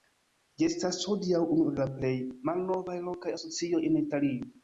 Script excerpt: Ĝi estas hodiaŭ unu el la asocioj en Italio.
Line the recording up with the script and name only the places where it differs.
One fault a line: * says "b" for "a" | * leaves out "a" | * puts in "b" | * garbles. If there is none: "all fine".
* puts in "plej malnovaj lokaj"